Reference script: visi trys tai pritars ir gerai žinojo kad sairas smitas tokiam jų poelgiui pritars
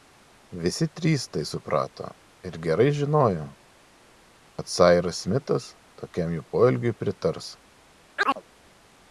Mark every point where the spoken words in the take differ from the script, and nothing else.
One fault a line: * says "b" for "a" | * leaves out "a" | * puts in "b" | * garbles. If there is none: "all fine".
* says "suprato" for "pritars"